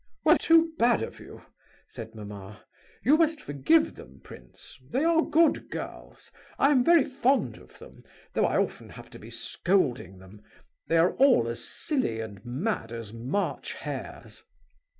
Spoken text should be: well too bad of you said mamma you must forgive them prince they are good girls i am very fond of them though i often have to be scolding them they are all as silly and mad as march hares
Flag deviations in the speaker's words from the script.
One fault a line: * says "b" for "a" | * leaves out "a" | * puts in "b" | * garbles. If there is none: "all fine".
all fine